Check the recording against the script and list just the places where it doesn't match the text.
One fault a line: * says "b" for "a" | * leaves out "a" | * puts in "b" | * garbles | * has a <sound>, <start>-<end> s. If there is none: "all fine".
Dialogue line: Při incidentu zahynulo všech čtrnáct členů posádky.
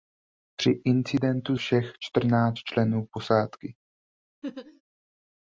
* leaves out "zahynulo"
* has a laugh, 4.4-4.8 s